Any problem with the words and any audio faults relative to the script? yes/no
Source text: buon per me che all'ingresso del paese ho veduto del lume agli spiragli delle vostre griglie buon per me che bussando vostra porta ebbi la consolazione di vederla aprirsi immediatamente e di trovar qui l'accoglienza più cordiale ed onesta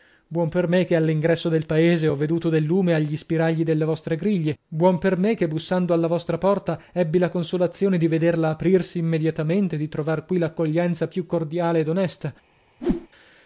yes